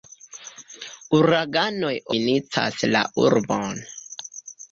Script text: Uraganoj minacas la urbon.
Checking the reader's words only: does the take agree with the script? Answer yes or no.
yes